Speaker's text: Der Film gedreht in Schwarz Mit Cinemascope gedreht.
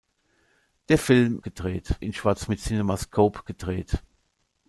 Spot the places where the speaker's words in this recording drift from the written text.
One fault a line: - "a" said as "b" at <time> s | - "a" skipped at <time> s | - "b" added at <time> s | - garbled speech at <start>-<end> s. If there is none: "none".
none